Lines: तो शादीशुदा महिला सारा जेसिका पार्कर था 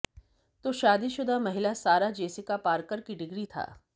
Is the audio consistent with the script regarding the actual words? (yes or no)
no